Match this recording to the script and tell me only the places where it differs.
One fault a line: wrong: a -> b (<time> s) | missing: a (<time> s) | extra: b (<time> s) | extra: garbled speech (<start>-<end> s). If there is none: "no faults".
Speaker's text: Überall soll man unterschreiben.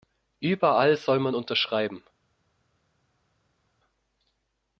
no faults